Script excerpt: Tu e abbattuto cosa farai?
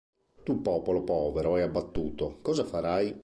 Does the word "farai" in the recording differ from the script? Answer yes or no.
no